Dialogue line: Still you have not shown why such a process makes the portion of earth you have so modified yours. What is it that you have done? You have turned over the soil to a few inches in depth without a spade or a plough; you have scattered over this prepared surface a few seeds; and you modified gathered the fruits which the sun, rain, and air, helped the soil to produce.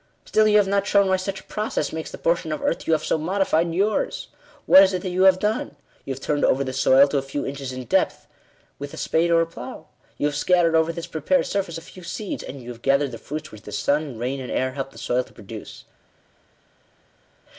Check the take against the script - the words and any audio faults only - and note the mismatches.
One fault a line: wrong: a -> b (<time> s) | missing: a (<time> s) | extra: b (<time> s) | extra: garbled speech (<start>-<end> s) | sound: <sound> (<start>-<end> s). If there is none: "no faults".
wrong: without -> with (8.8 s)
wrong: modified -> have (12.7 s)